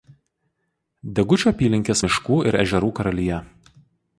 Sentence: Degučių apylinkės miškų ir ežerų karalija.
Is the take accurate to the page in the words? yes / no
yes